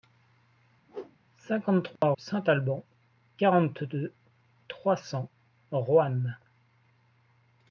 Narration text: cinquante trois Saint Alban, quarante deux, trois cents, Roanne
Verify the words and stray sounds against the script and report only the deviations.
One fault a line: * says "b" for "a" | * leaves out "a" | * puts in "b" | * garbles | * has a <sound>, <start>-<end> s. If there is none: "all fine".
* has a whoosh, 0.9-1.2 s
* has a dropout, 2.0-2.0 s